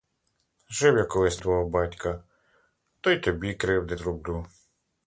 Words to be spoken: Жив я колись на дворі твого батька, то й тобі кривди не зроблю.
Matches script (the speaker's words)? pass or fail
fail